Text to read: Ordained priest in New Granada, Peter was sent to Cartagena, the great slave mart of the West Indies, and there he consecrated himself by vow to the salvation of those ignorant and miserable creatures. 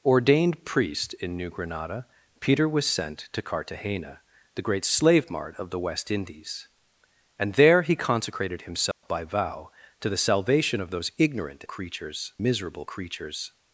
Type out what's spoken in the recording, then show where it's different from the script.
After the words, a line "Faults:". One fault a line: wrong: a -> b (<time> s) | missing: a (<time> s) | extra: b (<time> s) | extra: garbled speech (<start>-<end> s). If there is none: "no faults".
Ordained priest in New Granada, Peter was sent to Cartagena, the great slave mart of the West Indies, and there he consecrated himself by vow to the salvation of those ignorant creatures miserable creatures.
Faults:
wrong: and -> creatures (11.6 s)